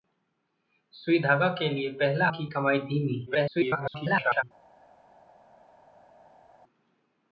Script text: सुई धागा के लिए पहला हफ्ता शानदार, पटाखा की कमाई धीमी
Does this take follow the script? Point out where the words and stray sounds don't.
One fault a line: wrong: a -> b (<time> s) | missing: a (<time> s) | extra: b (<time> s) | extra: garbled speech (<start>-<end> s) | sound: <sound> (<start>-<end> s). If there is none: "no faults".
missing: हफ्ता शानदार पटाखा (2.3 s)
extra: garbled speech (3.3-4.4 s)